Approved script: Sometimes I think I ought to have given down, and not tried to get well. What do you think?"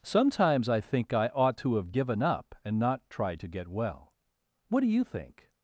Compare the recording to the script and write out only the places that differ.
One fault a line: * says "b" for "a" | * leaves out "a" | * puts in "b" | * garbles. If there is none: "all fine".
* says "up" for "down"